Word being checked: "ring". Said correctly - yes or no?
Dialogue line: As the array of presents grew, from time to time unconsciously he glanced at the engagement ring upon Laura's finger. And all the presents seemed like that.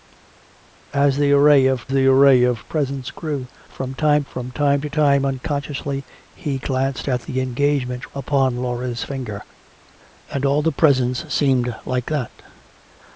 no